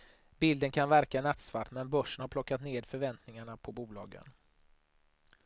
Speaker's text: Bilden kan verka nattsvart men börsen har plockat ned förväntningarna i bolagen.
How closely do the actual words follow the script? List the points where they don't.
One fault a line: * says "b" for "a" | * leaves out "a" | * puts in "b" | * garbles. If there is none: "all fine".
* says "på" for "i"